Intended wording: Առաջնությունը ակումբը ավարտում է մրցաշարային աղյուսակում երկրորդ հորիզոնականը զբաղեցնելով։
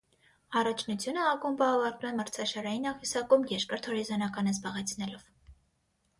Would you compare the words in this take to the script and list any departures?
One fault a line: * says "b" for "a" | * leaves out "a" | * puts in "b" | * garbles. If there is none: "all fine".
all fine